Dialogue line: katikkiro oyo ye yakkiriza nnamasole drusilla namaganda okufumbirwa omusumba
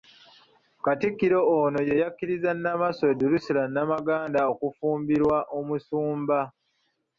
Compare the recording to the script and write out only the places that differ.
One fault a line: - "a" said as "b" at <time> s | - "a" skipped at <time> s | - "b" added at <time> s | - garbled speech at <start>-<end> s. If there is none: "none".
- "oyo" said as "ono" at 1.6 s